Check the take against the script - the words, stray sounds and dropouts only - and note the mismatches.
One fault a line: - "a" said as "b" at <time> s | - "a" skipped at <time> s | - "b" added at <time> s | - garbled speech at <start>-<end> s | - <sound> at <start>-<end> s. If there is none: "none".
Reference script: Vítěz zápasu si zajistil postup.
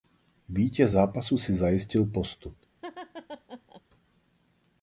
- laugh at 2.8-3.8 s